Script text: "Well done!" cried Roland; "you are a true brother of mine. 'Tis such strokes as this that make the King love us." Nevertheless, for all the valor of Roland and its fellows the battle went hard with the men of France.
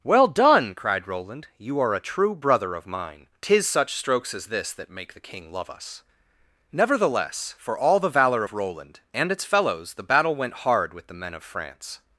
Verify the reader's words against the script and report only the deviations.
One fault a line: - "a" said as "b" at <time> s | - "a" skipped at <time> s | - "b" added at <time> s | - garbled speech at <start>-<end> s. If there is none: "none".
none